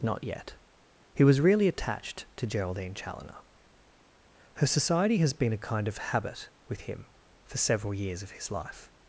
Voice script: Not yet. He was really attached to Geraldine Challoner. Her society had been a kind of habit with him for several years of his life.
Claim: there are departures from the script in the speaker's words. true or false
true